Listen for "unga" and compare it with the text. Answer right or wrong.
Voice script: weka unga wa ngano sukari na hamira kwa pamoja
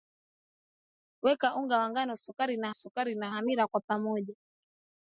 right